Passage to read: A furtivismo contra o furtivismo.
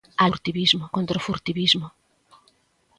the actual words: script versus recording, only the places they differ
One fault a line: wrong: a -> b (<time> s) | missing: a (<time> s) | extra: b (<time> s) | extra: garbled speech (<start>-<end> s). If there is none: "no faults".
no faults